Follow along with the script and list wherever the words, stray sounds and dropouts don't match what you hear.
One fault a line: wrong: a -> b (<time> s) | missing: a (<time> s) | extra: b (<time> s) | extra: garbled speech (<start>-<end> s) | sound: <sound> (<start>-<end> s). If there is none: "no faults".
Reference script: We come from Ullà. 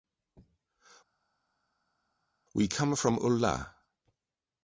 no faults